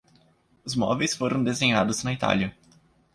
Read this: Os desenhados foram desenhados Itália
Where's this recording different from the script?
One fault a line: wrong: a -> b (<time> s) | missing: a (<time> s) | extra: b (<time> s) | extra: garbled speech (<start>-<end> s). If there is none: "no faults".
wrong: desenhados -> móveis (0.8 s)
extra: na (2.0 s)